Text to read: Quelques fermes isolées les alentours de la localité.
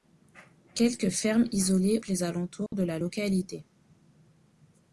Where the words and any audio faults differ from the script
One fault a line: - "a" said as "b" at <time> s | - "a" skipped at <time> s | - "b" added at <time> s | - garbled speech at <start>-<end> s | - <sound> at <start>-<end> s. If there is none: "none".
- dropout at 2.7-2.7 s